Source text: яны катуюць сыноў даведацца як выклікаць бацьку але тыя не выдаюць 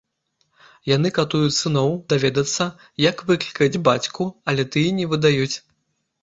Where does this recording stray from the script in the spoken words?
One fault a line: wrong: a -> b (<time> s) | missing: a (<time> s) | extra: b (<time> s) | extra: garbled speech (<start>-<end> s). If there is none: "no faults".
no faults